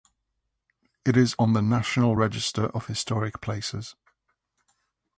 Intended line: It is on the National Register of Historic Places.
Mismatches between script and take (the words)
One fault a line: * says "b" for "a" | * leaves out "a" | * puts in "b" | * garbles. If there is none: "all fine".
all fine